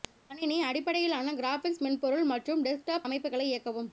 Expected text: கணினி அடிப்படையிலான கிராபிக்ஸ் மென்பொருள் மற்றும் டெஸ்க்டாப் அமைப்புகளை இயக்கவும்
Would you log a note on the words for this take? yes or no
no